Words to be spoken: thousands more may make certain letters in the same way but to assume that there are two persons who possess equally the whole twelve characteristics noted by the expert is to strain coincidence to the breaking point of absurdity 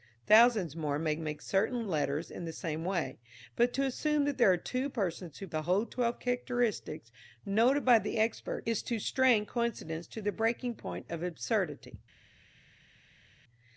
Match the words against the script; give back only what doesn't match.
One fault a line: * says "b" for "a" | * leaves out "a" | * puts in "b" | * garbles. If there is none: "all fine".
* leaves out "possess equally"